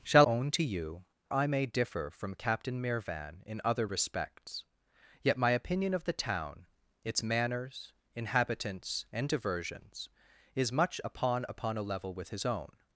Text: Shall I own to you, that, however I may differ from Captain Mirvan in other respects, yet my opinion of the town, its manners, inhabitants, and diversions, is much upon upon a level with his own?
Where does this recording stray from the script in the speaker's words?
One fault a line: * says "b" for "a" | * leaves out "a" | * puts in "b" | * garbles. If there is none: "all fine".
* leaves out "I"
* leaves out "that however"